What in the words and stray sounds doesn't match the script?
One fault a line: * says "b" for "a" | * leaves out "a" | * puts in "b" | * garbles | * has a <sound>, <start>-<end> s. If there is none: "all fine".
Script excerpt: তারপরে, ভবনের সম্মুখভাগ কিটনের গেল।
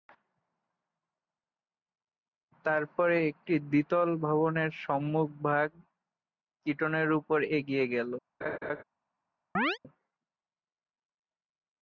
* puts in "একটি দ্বিতল"
* puts in "উপর এগিয়ে"
* has a laugh, 8.4-8.8 s
* has a chirp, 9.5-9.8 s